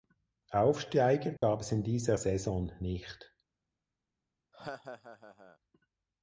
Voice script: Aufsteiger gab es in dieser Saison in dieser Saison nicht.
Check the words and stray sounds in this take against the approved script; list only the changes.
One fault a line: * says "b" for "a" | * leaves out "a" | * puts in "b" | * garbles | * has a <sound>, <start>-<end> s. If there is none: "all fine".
* has a dropout, 1.4-1.4 s
* leaves out "in dieser Saison"
* has a laugh, 4.5-5.6 s